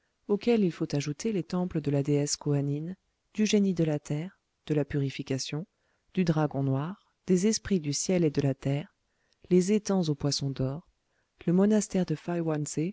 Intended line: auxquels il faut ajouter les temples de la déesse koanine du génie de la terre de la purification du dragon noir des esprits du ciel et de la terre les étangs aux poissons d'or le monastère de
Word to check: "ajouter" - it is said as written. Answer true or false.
true